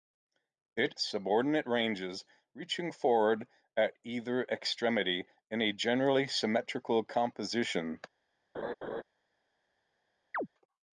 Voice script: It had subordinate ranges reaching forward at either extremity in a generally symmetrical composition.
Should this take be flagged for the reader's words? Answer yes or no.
yes